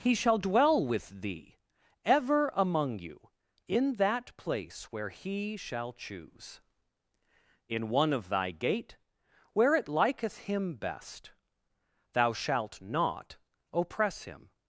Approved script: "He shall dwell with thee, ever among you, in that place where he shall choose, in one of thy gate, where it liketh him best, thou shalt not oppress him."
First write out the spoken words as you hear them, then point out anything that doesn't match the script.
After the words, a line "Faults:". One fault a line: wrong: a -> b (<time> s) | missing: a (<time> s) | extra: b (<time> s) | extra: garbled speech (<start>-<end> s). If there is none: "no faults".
"He shall dwell with thee, ever among you, in that place where he shall choose, in one of thy gate, where it liketh him best, thou shalt not oppress him."
Faults:
no faults